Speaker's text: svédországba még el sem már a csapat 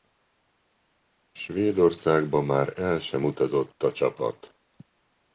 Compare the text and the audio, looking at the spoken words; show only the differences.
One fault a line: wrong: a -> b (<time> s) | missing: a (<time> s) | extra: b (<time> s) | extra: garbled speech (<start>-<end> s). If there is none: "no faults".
wrong: még -> már (2.4 s)
wrong: már -> utazott (3.2 s)